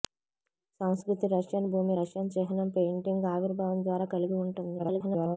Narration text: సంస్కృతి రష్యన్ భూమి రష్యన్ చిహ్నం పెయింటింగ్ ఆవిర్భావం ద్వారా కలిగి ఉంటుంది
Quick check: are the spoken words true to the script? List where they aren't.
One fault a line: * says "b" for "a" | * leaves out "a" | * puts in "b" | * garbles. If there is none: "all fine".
* garbles